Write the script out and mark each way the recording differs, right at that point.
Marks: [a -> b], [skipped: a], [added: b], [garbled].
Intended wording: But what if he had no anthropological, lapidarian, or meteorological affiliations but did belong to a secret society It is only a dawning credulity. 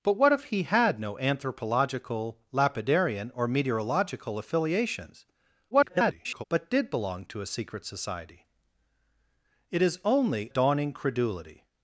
But what if he had no anthropological, lapidarian, or meteorological affiliations [garbled] but did belong to a secret society It is only [skipped: a] dawning credulity.